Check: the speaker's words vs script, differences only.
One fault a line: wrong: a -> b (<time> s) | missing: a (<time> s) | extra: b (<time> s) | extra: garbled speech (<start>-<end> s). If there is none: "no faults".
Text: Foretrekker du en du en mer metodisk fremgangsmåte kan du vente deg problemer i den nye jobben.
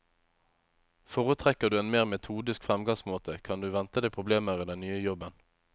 missing: du en (1.9 s)